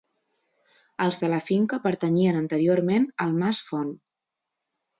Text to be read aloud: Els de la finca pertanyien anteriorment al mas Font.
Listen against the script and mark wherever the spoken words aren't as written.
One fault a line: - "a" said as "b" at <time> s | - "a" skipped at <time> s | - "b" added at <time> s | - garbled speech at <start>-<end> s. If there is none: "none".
none